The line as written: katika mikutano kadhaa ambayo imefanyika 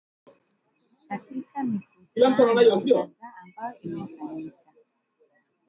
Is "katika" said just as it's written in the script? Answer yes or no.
yes